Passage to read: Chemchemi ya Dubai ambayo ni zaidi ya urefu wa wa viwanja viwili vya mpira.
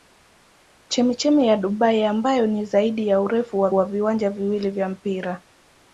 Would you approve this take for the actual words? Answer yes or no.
yes